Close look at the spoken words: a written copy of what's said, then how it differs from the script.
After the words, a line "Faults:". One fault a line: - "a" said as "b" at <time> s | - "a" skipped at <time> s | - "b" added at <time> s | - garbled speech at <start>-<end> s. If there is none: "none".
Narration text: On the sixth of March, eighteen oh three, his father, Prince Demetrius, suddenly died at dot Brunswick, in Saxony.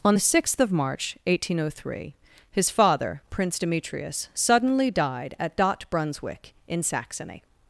On the sixth of March, eighteen oh three, his father, Prince Demetrius, suddenly died at dot Brunswick, in Saxony.
Faults:
none